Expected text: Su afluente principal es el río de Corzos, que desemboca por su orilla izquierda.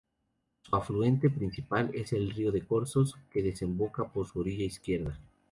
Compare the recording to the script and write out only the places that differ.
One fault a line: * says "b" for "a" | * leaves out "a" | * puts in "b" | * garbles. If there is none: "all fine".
all fine